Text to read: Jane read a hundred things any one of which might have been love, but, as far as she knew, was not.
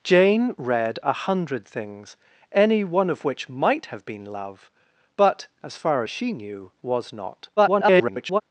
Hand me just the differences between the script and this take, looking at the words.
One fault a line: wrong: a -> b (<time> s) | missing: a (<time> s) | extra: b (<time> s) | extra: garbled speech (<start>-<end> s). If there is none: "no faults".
extra: garbled speech (7.6-8.4 s)